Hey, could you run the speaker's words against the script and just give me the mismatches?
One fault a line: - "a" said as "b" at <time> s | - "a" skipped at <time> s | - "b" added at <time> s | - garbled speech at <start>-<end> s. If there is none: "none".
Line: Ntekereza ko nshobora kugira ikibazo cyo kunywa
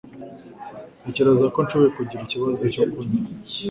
none